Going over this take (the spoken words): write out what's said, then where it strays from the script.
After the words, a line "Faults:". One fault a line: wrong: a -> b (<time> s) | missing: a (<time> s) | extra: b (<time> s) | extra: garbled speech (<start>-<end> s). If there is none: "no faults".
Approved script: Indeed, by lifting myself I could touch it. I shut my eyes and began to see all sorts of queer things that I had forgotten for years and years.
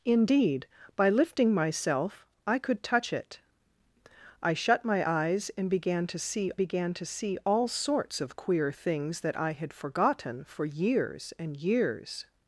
Indeed, by lifting myself I could touch it. I shut my eyes and began to see began to see all sorts of queer things that I had forgotten for years and years.
Faults:
extra: began to see (6.6 s)